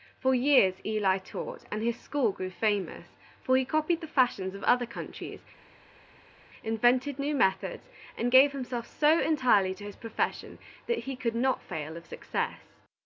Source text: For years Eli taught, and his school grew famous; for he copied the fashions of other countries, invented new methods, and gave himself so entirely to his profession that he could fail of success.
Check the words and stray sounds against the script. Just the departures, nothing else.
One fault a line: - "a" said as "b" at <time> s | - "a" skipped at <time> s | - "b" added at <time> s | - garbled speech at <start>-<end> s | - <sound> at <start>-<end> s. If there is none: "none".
- "not" added at 11.4 s